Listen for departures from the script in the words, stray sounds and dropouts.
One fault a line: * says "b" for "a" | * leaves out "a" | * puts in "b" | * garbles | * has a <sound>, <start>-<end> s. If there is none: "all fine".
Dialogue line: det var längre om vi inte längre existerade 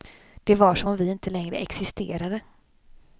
* says "som" for "längre"